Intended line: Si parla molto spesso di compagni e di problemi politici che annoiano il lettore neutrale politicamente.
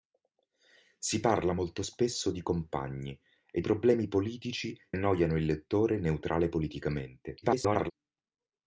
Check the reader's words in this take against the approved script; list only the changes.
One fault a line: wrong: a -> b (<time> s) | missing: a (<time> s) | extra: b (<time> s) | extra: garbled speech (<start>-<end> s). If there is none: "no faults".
missing: di (3.6 s)
missing: che (4.8 s)
extra: garbled speech (7.4-7.9 s)